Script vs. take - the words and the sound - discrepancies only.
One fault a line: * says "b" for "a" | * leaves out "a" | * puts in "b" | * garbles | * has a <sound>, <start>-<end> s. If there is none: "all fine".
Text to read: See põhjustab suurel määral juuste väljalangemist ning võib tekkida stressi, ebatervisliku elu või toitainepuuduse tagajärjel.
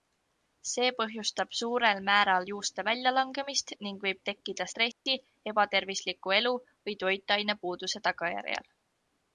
* has a dropout, 4.9-5.1 s